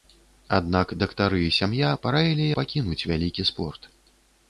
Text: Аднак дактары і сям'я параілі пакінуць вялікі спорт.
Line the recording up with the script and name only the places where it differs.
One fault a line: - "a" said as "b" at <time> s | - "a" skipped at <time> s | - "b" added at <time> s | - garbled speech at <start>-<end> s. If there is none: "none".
none